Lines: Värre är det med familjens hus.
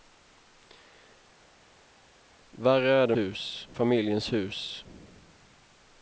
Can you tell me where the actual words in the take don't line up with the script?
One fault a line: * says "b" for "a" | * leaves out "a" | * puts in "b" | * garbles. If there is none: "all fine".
* says "hus" for "med"